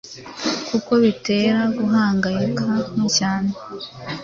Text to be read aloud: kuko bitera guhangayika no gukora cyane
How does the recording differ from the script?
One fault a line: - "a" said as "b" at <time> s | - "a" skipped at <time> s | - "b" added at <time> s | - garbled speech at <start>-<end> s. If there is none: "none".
- "gukora" skipped at 3.0 s